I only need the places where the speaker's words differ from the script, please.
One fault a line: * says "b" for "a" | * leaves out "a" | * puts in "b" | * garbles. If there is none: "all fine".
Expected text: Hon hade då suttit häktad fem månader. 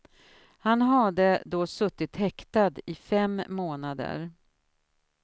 * says "Han" for "Hon"
* puts in "i"